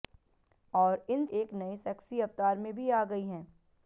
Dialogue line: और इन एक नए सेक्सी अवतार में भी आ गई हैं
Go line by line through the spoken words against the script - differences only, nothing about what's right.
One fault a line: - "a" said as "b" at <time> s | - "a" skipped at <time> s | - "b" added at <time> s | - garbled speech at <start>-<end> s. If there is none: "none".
none